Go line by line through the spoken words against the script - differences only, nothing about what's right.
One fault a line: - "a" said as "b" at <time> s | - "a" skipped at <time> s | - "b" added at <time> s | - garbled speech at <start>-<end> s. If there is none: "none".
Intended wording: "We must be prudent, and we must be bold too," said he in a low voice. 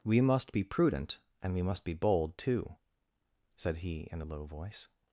none